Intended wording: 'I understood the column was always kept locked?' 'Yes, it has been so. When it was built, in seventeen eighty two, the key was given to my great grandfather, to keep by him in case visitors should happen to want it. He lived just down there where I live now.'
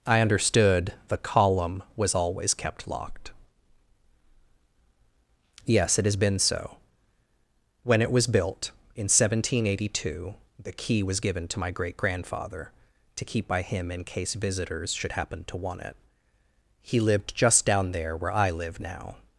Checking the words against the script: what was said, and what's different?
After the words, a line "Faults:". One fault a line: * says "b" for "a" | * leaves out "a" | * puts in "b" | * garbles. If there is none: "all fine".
'I understood the column was always kept locked?' 'Yes, it has been so. When it was built, in seventeen eighty two, the key was given to my great grandfather, to keep by him in case visitors should happen to want it. He lived just down there where I live now.'
Faults:
all fine